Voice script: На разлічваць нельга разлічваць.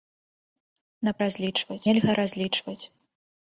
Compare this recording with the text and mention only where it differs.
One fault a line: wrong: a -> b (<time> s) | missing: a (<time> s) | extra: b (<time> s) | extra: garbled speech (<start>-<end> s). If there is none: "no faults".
no faults